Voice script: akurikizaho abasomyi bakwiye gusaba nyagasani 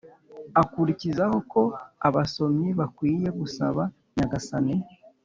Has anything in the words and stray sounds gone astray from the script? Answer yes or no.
yes